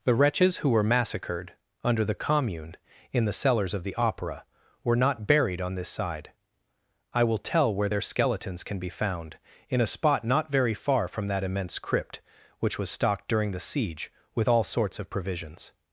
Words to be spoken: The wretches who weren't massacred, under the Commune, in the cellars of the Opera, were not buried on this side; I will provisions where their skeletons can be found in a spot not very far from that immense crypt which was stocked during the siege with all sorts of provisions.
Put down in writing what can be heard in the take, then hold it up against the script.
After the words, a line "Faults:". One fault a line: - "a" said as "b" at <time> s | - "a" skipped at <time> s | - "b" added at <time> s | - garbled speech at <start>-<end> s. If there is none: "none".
The wretches who were massacred, under the Commune, in the cellars of the Opera, were not buried on this side; I will tell where their skeletons can be found in a spot not very far from that immense crypt which was stocked during the siege with all sorts of provisions.
Faults:
- "weren't" said as "were" at 0.7 s
- "provisions" said as "tell" at 7.4 s